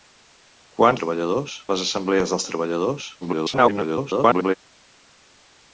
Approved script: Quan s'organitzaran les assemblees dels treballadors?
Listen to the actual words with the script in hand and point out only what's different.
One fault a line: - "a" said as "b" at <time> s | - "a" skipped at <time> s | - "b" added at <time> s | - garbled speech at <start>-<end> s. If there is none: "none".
- "s'organitzaran" said as "treballadors" at 1.0 s
- garbled speech at 3.2-4.5 s